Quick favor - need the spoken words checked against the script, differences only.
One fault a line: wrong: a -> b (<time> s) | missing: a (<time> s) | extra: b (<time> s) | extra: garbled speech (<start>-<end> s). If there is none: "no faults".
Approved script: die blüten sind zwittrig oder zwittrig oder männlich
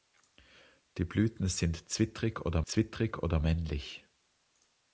no faults